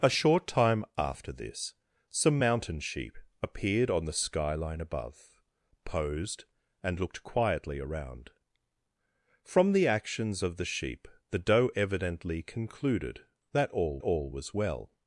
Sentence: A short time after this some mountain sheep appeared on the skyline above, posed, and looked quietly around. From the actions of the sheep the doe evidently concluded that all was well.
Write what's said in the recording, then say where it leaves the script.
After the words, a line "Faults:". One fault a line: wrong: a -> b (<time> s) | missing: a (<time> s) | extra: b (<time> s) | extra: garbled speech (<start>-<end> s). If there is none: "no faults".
A short time after this some mountain sheep appeared on the skyline above, posed, and looked quietly around. From the actions of the sheep the doe evidently concluded that all all was well.
Faults:
extra: all (14.0 s)